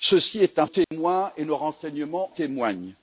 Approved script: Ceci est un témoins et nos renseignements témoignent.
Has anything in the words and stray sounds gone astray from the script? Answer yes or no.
yes